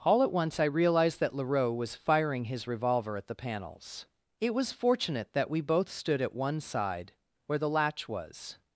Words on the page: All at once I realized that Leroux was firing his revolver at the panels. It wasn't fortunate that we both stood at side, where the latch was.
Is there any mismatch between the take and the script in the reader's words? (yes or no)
yes